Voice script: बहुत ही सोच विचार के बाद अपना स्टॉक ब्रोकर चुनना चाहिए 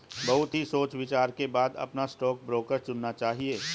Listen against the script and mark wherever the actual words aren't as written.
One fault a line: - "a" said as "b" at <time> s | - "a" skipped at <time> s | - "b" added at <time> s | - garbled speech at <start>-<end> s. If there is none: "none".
none